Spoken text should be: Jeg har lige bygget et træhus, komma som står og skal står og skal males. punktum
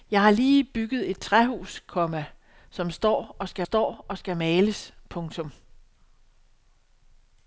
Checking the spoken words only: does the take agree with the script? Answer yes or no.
yes